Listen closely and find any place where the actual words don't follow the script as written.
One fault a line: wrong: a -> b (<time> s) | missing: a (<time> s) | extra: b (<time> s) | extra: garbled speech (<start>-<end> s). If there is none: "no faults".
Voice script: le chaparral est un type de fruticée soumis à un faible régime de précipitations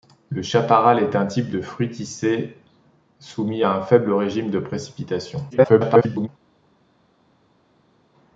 extra: garbled speech (5.5-6.3 s)